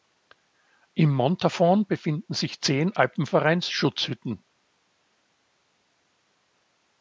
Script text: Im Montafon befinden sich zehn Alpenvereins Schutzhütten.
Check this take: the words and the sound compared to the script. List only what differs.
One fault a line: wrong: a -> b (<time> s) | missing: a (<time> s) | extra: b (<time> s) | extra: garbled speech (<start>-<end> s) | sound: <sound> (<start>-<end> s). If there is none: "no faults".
no faults